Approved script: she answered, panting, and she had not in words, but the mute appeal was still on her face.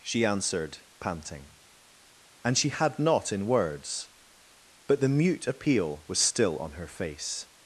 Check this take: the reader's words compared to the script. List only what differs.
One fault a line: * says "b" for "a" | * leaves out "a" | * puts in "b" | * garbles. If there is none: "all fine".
all fine